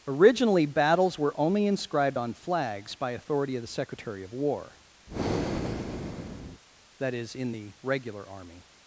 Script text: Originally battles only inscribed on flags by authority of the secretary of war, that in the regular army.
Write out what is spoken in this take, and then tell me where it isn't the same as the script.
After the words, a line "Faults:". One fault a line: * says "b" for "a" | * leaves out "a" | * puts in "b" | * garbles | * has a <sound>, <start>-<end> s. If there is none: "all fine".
Originally battles were only inscribed on flags by authority of the secretary of war, that is, in the regular army.
Faults:
* puts in "were"
* has a breath, 5.1-6.6 s
* puts in "is"